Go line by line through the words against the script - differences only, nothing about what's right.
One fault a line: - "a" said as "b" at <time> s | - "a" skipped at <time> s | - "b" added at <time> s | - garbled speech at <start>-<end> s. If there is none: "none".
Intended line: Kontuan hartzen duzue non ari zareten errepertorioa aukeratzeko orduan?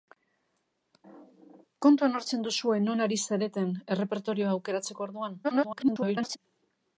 - garbled speech at 5.4-6.4 s